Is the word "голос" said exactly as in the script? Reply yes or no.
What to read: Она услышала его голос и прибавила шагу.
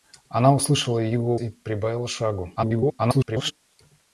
no